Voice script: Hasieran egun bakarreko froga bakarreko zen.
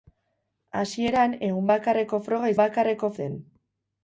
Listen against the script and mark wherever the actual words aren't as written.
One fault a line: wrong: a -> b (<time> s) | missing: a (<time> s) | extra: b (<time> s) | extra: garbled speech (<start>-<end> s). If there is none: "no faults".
no faults